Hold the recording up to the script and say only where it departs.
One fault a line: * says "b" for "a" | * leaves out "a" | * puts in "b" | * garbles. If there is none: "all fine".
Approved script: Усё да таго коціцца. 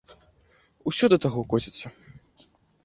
all fine